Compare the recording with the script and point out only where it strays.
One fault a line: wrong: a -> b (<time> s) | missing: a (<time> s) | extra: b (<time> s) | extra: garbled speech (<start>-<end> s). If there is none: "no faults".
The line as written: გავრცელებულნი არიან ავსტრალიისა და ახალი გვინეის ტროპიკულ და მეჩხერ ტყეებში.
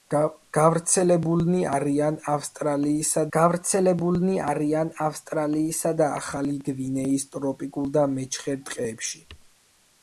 extra: გავრცელებულნი არიან ავსტრალიისა (3.4 s)